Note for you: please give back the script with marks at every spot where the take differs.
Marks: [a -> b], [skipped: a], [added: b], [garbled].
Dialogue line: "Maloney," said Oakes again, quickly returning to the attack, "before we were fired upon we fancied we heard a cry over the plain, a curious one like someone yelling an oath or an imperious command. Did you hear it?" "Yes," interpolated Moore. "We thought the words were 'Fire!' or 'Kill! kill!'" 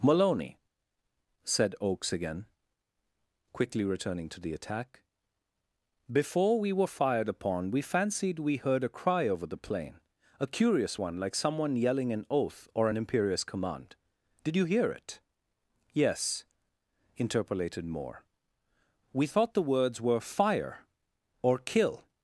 "Maloney," said Oakes again, quickly returning to the attack, "before we were fired upon we fancied we heard a cry over the plain, a curious one like someone yelling an oath or an imperious command. Did you hear it?" "Yes," interpolated Moore. "We thought the words were 'Fire!' or 'Kill! [skipped: kill!'"]